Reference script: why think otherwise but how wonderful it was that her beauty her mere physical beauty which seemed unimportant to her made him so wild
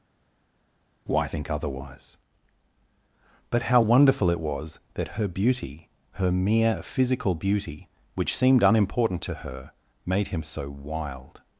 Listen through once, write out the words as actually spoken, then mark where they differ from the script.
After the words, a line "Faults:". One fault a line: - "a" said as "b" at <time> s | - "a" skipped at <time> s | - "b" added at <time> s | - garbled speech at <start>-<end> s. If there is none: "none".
why think otherwise but how wonderful it was that her beauty her mere physical beauty which seemed unimportant to her made him so wild
Faults:
none